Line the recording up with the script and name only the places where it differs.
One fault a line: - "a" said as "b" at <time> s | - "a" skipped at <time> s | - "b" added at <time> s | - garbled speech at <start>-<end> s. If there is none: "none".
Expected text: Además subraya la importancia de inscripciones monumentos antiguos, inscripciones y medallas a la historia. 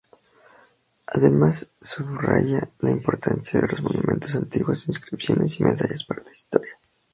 - "inscripciones" said as "los" at 3.7 s
- "a" said as "para" at 6.0 s